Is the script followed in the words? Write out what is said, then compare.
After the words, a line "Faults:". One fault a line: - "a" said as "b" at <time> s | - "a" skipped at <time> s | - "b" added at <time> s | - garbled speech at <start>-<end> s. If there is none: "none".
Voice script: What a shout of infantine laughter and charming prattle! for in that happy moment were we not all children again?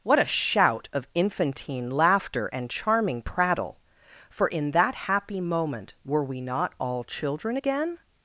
What a shout of infantine laughter and charming prattle! for in that happy moment were we not all children again?
Faults:
none